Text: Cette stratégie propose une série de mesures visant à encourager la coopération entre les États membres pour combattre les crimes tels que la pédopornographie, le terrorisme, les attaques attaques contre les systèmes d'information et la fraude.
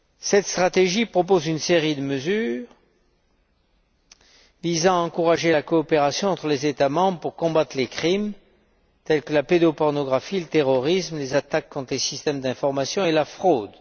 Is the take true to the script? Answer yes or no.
no